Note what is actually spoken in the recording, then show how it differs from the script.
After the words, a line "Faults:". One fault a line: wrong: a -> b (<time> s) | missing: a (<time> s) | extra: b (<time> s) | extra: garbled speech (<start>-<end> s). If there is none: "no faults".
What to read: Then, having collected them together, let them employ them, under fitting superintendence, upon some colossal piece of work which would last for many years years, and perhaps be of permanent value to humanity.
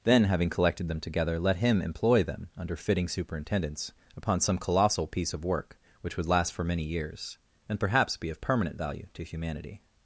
Then, having collected them together, let him employ them, under fitting superintendence, upon some colossal piece of work which would last for many years, and perhaps be of permanent value to humanity.
Faults:
wrong: them -> him (1.6 s)
missing: years (7.4 s)